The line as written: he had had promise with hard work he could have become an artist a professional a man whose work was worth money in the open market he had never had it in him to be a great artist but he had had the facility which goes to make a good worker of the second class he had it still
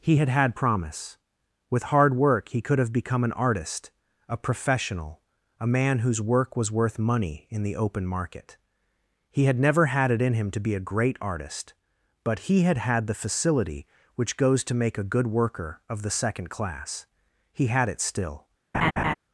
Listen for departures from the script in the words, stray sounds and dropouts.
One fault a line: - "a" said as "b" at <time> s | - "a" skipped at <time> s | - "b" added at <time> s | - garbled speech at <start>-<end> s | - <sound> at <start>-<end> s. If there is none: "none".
- laugh at 18.7-19.1 s